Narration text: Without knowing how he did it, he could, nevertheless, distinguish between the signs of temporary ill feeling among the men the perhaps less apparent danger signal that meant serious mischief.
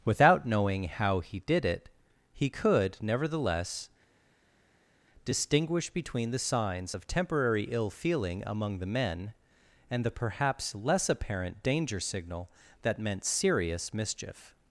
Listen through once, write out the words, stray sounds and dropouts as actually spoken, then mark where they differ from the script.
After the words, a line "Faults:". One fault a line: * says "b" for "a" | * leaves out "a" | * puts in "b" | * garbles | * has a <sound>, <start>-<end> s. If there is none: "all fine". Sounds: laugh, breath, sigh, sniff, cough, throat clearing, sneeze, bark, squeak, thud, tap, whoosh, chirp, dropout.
Without knowing how he did it, he could, nevertheless, distinguish between the signs of temporary ill feeling among the men and the perhaps less apparent danger signal that meant serious mischief.
Faults:
* puts in "and"